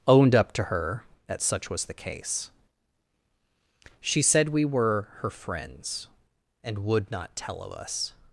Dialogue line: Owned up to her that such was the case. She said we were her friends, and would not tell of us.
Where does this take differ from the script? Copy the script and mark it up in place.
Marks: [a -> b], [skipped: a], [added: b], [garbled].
Owned up to her that such was the case. She said we were her friends, and would not tell of us.